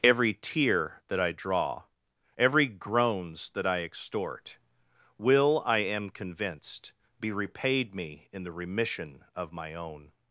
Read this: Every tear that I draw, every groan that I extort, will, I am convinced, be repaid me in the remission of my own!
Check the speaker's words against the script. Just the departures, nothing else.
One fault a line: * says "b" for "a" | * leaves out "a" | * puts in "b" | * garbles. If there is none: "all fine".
* says "groans" for "groan"